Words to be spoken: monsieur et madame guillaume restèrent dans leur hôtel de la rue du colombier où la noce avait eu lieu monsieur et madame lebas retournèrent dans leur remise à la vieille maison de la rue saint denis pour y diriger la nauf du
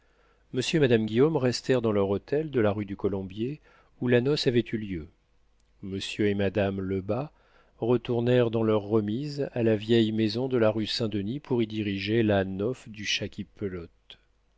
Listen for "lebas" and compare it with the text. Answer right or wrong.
right